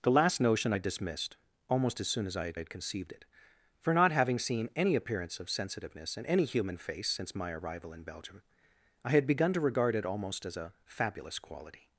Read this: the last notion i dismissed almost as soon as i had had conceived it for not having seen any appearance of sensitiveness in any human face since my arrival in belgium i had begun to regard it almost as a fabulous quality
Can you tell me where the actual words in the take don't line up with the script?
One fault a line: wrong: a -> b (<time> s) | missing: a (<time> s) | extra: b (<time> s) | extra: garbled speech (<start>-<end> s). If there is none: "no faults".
no faults